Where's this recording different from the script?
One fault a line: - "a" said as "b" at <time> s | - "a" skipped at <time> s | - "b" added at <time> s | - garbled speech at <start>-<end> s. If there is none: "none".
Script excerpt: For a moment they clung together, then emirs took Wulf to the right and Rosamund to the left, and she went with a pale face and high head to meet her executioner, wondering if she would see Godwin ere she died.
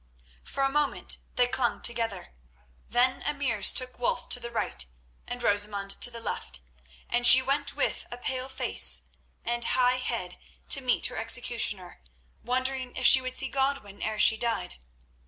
none